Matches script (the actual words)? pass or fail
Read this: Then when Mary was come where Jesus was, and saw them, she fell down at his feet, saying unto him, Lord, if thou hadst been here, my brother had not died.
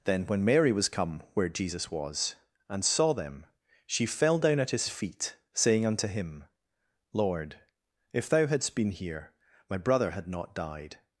pass